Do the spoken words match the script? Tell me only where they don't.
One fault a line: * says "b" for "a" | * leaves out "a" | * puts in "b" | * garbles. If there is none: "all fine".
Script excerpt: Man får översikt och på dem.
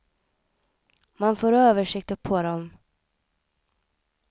all fine